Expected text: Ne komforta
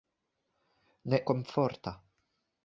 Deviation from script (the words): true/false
false